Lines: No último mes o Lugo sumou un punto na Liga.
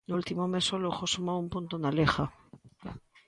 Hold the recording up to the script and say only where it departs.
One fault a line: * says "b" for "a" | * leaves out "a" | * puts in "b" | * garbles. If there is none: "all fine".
all fine